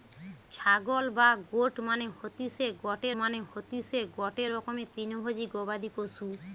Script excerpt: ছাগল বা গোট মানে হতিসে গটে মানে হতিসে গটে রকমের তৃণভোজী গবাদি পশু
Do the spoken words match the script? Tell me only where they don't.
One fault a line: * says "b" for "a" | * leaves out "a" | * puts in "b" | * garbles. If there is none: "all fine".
all fine